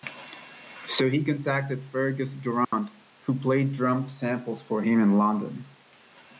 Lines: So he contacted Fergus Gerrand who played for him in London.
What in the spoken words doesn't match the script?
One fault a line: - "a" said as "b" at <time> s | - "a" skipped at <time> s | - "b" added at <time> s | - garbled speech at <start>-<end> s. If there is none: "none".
- "drum samples" added at 3.7 s